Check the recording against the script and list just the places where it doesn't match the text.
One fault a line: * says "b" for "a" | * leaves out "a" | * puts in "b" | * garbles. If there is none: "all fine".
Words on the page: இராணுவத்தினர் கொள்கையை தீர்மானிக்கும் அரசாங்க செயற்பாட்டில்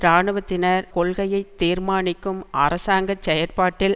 all fine